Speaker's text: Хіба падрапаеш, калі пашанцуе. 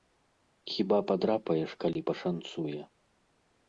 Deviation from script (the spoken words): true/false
false